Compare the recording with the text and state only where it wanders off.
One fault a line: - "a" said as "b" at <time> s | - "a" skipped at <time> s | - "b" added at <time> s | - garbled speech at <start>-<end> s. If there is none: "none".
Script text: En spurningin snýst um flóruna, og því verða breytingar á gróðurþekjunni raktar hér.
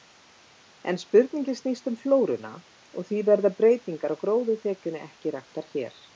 - "ekki" added at 5.1 s